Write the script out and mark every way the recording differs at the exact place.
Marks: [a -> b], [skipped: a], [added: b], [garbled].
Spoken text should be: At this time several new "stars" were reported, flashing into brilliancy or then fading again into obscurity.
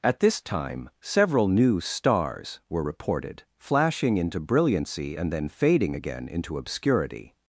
At this time several new "stars" were reported, flashing into brilliancy [or -> and] then fading again into obscurity.